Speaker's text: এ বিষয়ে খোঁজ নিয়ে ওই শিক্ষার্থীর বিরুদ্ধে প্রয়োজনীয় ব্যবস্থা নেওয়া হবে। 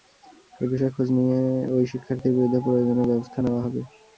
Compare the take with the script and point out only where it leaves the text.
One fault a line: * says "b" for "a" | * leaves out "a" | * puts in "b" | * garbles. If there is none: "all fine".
all fine